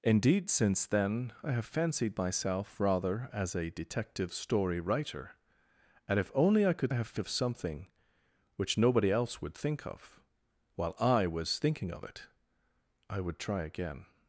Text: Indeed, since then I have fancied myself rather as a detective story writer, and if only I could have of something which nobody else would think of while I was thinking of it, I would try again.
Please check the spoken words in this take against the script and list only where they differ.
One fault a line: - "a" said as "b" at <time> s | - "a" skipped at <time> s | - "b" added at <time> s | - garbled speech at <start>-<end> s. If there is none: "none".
none